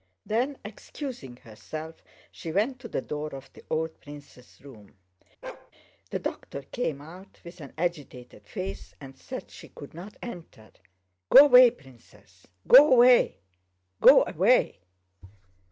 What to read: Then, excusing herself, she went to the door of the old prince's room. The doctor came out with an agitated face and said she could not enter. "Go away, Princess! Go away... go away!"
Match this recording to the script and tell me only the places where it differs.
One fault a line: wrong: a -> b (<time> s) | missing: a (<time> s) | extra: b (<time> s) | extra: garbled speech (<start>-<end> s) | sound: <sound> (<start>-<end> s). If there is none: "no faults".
sound: bark (5.4-5.7 s)